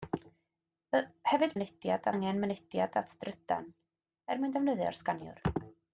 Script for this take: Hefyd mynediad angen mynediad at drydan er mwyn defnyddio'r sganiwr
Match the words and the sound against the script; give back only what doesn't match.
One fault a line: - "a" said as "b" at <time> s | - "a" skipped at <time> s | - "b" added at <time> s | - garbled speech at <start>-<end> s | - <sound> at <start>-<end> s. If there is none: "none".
none